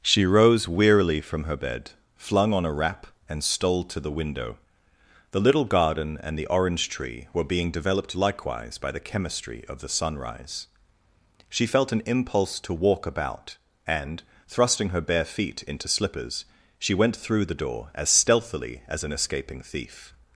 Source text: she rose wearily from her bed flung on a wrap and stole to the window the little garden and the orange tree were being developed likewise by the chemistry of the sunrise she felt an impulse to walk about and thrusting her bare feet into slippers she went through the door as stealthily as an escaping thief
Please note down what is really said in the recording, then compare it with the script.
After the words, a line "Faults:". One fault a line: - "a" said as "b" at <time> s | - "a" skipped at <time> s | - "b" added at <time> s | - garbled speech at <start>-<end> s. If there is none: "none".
she rose wearily from her bed flung on a wrap and stole to the window the little garden and the orange tree were being developed likewise by the chemistry of the sunrise she felt an impulse to walk about and thrusting her bare feet into slippers she went through the door as stealthily as an escaping thief
Faults:
none